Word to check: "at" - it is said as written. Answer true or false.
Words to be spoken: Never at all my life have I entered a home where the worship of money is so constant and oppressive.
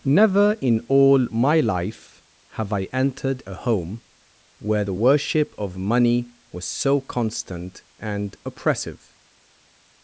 false